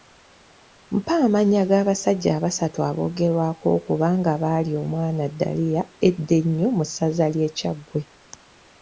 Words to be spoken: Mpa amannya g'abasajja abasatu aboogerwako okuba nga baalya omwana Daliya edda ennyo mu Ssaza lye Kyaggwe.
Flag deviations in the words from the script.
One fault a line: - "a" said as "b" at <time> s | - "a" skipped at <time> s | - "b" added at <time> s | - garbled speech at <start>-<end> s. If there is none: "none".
none